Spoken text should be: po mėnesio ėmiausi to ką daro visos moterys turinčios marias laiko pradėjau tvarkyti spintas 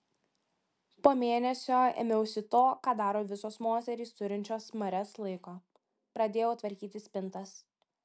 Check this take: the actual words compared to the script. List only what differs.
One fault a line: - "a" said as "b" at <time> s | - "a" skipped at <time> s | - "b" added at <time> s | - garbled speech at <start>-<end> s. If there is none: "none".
none